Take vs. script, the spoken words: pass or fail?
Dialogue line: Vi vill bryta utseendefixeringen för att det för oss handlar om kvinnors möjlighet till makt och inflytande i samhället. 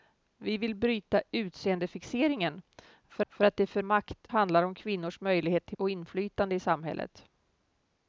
fail